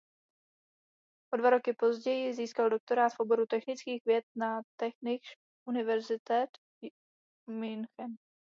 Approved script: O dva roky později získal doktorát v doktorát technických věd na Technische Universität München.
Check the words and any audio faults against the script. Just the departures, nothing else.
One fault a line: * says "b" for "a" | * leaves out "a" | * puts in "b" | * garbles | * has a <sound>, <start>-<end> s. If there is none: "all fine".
* says "oboru" for "doktorát"